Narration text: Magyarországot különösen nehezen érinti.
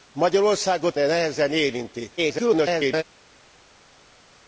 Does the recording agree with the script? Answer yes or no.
no